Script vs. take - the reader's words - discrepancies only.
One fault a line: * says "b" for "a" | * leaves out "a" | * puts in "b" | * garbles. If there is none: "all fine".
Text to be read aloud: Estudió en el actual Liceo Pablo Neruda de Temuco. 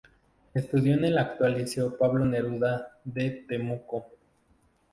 all fine